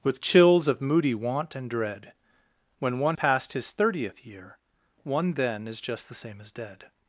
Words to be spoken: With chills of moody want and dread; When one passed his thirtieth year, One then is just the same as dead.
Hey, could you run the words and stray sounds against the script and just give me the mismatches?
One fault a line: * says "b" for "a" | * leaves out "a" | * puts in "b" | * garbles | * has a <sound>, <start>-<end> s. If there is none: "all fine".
all fine